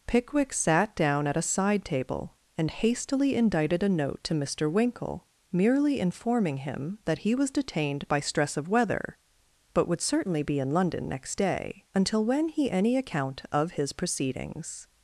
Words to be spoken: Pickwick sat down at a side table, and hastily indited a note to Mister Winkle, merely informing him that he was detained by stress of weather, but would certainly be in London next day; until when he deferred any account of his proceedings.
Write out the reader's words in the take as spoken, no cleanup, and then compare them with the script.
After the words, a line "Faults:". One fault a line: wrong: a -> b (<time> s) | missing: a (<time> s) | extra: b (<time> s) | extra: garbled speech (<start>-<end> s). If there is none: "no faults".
Pickwick sat down at a side table, and hastily indited a note to Mister Winkle, merely informing him that he was detained by stress of weather, but would certainly be in London next day; until when he any account of his proceedings.
Faults:
missing: deferred (12.7 s)